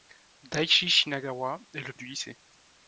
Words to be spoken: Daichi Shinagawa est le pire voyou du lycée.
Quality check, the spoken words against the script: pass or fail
fail